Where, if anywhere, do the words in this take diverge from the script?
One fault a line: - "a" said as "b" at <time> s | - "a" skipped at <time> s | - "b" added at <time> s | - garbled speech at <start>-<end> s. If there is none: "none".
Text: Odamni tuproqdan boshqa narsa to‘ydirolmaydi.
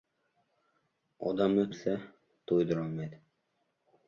- "tuproqdan boshqa" skipped at 1.6 s